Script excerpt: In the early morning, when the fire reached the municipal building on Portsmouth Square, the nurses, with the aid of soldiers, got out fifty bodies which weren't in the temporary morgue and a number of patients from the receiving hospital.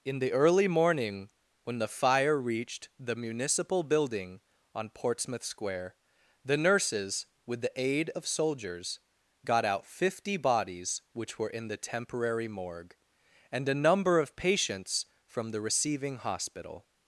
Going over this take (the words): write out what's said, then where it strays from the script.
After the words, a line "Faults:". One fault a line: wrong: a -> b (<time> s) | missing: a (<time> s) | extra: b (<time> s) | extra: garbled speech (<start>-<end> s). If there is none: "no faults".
In the early morning, when the fire reached the municipal building on Portsmouth Square, the nurses, with the aid of soldiers, got out fifty bodies which were in the temporary morgue and a number of patients from the receiving hospital.
Faults:
wrong: weren't -> were (11.4 s)